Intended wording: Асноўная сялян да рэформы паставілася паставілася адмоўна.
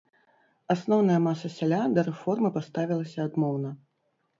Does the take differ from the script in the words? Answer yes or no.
yes